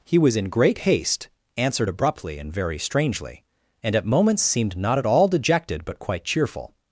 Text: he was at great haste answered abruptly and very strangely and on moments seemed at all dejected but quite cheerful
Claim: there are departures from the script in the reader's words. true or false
true